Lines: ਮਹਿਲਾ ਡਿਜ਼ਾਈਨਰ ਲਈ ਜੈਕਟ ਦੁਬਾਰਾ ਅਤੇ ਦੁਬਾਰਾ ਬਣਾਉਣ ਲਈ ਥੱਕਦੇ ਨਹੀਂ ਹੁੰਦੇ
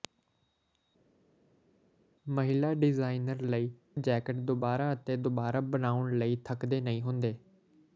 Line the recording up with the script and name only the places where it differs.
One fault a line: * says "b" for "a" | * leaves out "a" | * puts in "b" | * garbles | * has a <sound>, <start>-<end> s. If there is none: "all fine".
all fine